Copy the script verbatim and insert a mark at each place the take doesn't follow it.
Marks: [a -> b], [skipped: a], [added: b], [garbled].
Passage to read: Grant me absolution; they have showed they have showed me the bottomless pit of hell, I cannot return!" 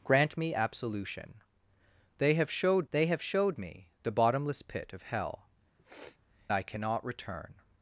Grant me absolution; they have showed they have showed me the bottomless pit of hell, I cannot return!"